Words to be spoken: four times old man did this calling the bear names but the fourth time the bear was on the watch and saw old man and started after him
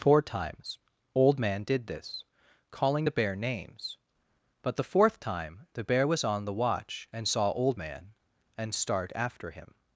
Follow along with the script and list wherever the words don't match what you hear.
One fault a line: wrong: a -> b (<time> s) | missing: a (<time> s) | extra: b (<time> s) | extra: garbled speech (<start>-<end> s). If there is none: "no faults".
wrong: started -> start (8.7 s)